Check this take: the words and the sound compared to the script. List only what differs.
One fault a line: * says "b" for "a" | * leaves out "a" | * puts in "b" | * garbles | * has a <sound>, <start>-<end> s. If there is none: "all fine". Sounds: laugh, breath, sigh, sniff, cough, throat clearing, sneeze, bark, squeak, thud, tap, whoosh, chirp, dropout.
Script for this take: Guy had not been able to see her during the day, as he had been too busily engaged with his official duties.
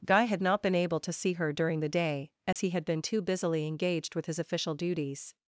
* has a dropout, 2.5-2.6 s